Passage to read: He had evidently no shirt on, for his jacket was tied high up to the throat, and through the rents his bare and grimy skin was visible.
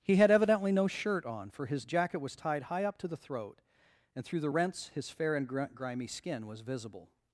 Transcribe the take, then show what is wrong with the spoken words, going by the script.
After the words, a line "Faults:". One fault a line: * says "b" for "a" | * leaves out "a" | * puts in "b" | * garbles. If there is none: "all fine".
He had evidently no shirt on, for his jacket was tied high up to the throat, and through the rents his fair and grimy skin was visible.
Faults:
* says "fair" for "bare"